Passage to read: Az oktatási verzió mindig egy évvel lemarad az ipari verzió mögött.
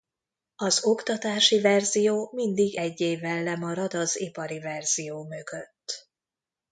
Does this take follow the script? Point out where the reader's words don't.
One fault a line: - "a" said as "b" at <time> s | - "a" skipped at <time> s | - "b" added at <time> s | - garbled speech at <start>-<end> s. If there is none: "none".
none